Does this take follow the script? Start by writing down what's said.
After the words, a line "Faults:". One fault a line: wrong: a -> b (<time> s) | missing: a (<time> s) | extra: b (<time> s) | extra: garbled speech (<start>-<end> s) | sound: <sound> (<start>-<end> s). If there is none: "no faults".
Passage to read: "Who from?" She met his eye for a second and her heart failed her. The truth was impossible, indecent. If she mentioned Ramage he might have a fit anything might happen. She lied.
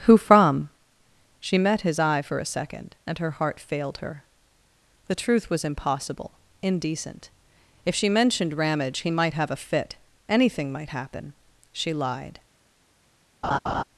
"Who from?" She met his eye for a second and her heart failed her. The truth was impossible, indecent. If she mentioned Ramage he might have a fit anything might happen. She lied.
Faults:
sound: laugh (13.4-13.8 s)